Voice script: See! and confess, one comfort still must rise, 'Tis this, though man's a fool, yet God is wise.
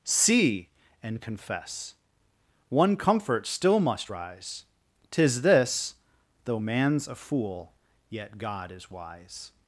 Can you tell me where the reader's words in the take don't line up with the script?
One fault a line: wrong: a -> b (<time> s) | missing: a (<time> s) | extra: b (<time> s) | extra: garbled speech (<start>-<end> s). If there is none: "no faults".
no faults